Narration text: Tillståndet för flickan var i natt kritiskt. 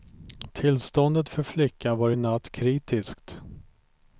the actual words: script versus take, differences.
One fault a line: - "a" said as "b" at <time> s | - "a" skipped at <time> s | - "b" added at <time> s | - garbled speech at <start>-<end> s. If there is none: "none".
none